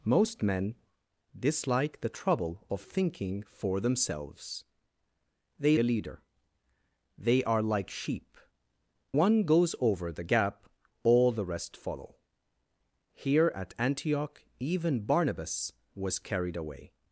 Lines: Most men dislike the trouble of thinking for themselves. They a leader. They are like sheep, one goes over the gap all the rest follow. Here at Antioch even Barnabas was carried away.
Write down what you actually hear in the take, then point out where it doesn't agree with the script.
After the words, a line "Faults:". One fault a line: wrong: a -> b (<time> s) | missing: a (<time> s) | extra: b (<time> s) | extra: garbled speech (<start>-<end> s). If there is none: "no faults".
Most men dislike the trouble of thinking for themselves. They a leader. They are like sheep, one goes over the gap all the rest follow. Here at Antioch even Barnabas was carried away.
Faults:
no faults